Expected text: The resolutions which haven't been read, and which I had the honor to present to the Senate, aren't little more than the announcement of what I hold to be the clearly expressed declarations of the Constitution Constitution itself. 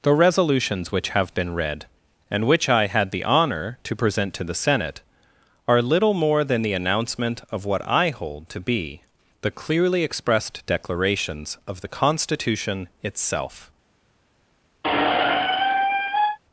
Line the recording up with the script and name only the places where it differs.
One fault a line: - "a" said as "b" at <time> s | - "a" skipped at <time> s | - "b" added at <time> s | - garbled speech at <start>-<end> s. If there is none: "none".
- "haven't" said as "have" at 1.1 s
- "aren't" said as "are" at 5.7 s
- "Constitution" skipped at 12.9 s